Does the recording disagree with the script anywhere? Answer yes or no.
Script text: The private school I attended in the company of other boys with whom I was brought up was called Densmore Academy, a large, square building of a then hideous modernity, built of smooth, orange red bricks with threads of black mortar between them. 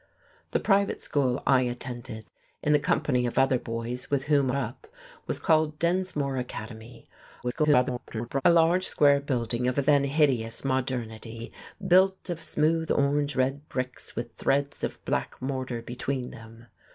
yes